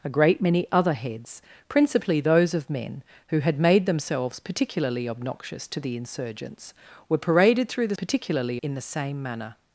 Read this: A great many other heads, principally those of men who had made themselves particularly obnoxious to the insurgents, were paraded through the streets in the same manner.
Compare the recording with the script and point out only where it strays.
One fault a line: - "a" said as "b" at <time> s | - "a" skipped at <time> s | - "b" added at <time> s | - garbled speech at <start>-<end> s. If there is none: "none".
- "streets" said as "particularly" at 7.9 s